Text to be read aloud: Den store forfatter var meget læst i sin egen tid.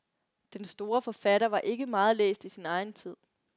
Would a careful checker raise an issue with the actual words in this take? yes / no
yes